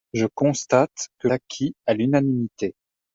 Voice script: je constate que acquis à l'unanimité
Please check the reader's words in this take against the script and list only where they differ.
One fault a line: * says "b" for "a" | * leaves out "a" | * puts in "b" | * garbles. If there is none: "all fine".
all fine